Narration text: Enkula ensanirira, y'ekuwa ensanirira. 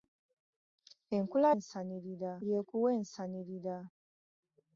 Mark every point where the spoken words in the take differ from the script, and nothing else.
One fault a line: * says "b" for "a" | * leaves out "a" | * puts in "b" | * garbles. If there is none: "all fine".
all fine